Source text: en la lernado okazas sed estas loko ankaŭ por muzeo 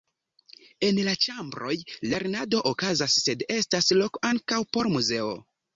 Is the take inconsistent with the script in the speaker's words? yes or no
yes